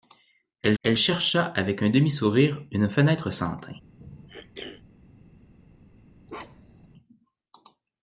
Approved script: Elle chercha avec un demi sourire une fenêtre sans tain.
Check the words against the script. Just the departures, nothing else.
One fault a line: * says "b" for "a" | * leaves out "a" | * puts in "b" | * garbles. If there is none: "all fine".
* puts in "elle"